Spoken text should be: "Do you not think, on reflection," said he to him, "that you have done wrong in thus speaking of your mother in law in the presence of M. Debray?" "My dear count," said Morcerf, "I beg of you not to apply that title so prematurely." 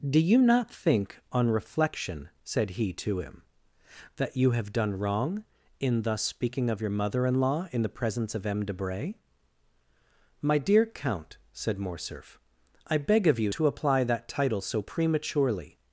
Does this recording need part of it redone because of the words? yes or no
yes